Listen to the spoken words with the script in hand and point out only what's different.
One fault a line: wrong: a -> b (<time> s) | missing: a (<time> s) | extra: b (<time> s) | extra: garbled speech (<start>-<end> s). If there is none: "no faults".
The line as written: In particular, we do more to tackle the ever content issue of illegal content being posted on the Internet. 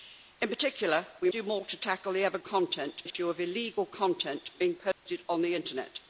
no faults